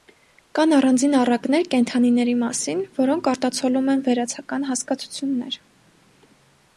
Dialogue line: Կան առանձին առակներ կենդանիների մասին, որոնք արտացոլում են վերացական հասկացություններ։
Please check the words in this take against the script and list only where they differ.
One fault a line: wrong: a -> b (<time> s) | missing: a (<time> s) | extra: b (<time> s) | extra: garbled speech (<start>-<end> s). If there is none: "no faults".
no faults